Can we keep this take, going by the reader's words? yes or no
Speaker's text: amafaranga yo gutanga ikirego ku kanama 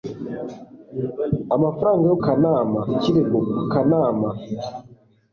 no